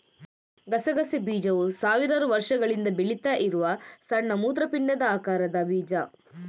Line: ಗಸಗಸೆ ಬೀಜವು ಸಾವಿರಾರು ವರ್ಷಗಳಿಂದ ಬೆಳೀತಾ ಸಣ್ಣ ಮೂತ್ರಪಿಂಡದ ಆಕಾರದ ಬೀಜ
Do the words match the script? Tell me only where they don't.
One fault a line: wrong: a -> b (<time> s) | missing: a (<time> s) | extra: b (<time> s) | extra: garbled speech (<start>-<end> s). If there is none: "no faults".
extra: ಇರುವ (3.4 s)